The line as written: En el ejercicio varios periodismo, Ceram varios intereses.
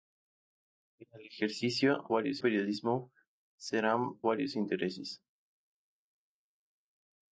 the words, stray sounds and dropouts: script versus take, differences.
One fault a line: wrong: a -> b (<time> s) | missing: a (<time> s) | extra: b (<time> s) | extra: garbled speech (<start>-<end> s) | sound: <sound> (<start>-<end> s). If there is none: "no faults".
no faults